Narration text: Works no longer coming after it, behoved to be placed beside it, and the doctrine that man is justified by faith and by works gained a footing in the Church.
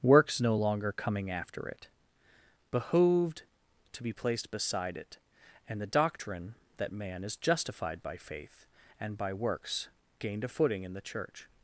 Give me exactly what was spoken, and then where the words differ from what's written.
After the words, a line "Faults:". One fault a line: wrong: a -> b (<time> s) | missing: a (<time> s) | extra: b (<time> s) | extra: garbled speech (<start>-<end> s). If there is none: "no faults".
Works no longer coming after it, behoved to be placed beside it, and the doctrine that man is justified by faith and by works gained a footing in the Church.
Faults:
no faults